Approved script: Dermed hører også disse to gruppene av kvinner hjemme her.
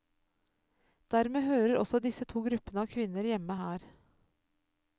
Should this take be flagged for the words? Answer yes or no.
no